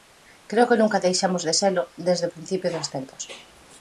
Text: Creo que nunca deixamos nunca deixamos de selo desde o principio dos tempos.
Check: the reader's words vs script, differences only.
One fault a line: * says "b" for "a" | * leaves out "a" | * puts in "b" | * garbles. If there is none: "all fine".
* leaves out "nunca deixamos"